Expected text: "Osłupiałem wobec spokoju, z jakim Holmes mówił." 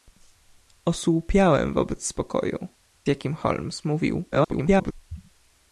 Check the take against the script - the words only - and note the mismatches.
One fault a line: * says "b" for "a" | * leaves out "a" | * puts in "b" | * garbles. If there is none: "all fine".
* leaves out "z"
* garbles